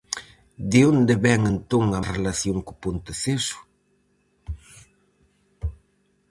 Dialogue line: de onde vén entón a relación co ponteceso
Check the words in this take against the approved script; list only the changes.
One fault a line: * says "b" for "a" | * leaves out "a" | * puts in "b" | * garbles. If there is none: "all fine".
all fine